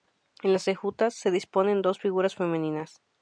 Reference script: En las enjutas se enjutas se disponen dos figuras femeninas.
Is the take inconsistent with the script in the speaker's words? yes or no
yes